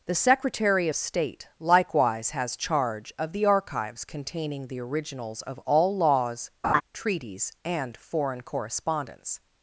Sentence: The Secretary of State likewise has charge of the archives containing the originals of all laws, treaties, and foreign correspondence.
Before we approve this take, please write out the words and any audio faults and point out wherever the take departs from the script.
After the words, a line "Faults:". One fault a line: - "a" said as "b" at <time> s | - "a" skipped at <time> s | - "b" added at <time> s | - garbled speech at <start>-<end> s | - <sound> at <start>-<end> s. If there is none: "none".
The Secretary of State likewise has charge of the archives containing the originals of all laws, treaties, and foreign correspondence.
Faults:
- laugh at 6.6-6.8 s